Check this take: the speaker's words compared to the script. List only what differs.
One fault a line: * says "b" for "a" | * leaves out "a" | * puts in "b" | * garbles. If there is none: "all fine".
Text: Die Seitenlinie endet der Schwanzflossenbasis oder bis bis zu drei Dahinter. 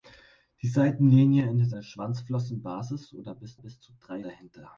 all fine